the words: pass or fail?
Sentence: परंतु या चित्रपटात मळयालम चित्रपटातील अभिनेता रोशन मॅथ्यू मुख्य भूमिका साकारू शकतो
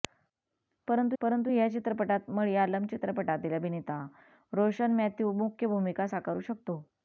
fail